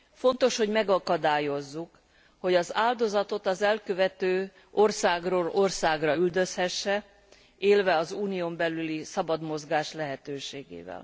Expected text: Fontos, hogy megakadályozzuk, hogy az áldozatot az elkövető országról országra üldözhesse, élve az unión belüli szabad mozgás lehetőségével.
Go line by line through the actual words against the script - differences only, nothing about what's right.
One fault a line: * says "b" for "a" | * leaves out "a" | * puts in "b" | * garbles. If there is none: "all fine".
all fine